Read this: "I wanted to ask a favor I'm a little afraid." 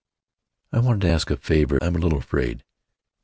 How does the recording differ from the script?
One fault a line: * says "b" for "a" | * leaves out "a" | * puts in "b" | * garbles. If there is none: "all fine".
all fine